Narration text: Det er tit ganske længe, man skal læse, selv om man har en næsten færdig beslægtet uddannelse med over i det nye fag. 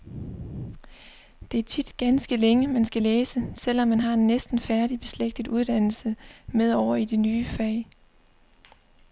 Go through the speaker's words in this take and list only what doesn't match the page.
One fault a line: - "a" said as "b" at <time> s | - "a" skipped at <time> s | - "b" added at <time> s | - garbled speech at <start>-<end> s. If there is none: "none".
none